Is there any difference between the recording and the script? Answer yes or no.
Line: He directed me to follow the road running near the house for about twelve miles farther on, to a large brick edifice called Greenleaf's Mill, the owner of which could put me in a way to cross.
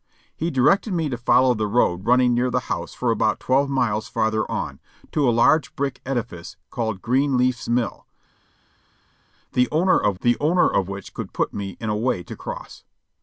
yes